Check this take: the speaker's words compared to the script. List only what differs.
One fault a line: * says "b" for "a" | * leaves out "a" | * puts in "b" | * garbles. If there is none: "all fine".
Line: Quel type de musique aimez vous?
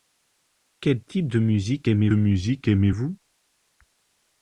* puts in "musique aimez"